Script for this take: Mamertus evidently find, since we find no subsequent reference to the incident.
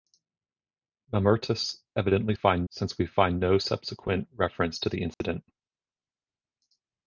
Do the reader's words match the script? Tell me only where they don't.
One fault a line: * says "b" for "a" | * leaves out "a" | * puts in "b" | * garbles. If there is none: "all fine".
all fine